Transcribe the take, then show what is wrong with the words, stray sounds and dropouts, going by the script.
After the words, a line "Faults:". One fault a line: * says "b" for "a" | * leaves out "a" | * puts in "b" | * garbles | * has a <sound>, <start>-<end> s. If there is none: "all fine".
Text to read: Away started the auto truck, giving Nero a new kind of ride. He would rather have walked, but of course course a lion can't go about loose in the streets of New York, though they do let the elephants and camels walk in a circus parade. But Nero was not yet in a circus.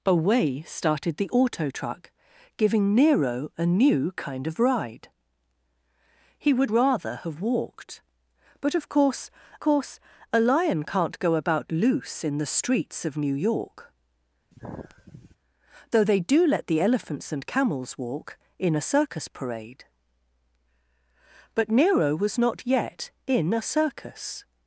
Away started the auto truck, giving Nero a new kind of ride. He would rather have walked, but of course course a lion can't go about loose in the streets of New York, though they do let the elephants and camels walk in a circus parade. But Nero was not yet in a circus.
Faults:
* has a sigh, 14.5-15.4 s